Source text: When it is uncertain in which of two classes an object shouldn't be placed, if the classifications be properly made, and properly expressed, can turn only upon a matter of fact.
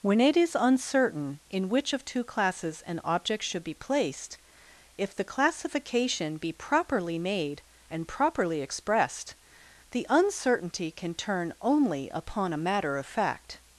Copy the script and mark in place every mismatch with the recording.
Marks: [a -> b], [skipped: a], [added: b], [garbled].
When it is uncertain in which of two classes an object [shouldn't -> should] be placed, if the [classifications -> classification] be properly made, and properly expressed, [added: the uncertainty] can turn only upon a matter of fact.